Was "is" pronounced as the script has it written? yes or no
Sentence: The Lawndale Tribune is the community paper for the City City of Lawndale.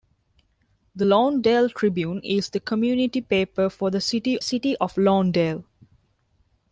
yes